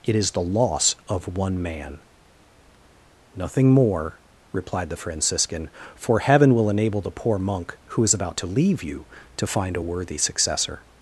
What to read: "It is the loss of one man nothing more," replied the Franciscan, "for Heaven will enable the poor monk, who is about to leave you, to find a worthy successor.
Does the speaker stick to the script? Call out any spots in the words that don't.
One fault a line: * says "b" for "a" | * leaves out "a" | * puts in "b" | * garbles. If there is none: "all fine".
all fine